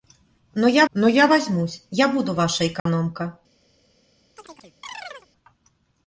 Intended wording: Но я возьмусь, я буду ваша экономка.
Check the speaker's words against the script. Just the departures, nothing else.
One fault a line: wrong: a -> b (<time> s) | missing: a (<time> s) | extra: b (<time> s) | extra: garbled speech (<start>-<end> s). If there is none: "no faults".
extra: но я (0.9 s)